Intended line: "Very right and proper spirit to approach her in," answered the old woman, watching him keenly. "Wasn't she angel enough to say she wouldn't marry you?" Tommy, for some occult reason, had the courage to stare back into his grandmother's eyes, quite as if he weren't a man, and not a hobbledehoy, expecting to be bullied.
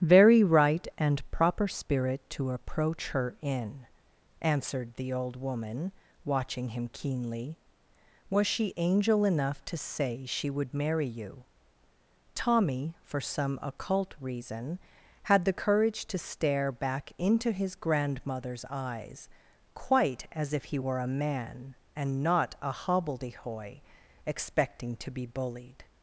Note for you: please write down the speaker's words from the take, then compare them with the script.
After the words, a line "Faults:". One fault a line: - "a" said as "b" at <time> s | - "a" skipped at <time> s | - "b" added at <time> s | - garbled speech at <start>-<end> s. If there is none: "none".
"Very right and proper spirit to approach her in," answered the old woman, watching him keenly. "Was she angel enough to say she would marry you?" Tommy, for some occult reason, had the courage to stare back into his grandmother's eyes, quite as if he were a man, and not a hobbledehoy, expecting to be bullied.
Faults:
- "Wasn't" said as "Was" at 8.3 s
- "wouldn't" said as "would" at 10.5 s
- "weren't" said as "were" at 20.8 s